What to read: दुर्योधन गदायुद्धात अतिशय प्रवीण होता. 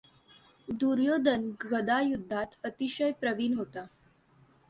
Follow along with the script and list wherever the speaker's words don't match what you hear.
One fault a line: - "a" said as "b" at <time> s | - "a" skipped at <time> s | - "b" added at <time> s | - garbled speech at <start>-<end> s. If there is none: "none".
none